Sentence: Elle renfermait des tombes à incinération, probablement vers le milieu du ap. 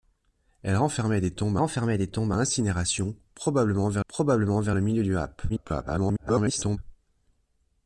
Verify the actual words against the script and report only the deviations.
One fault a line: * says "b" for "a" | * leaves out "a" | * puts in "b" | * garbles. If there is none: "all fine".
* puts in "renfermait des tombes"
* puts in "probablement vers"
* garbles